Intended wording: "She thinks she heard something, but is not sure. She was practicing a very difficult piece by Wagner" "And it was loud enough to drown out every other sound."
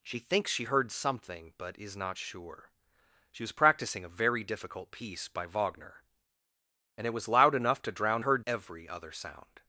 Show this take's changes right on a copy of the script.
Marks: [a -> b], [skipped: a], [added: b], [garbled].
"She thinks she heard something, but is not sure. She was practicing a very difficult piece by Wagner" "And it was loud enough to drown [out -> heard] every other sound."